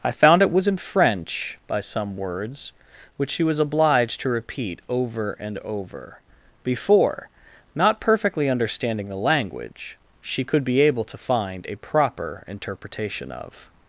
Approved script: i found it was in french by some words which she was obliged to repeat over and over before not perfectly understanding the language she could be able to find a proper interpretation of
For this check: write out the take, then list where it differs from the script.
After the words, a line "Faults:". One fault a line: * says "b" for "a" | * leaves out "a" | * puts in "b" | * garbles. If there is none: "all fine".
i found it was in french by some words which she was obliged to repeat over and over before not perfectly understanding the language she could be able to find a proper interpretation of
Faults:
all fine